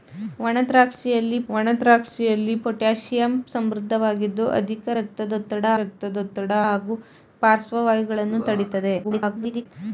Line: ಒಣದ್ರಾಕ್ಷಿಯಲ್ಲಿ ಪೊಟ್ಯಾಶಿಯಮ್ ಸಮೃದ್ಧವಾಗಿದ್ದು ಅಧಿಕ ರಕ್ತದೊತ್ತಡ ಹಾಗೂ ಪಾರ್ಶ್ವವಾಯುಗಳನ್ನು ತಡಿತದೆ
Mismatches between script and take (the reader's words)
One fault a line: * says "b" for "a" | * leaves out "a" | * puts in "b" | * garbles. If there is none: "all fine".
* puts in "ಒಣದ್ರಾಕ್ಷಿಯಲ್ಲಿ"
* puts in "ರಕ್ತದೊತ್ತಡ"
* garbles